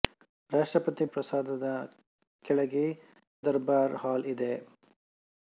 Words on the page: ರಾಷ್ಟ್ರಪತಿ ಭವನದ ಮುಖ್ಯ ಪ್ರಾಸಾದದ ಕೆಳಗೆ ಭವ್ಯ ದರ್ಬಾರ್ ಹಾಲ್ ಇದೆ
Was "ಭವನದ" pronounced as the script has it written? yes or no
no